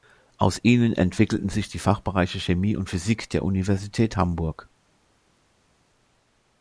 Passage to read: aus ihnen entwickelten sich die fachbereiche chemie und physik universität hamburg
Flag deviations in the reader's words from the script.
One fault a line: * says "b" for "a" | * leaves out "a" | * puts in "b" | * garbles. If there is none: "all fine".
* puts in "der"